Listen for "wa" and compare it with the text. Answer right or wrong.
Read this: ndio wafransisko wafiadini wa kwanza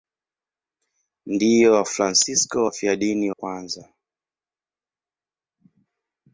wrong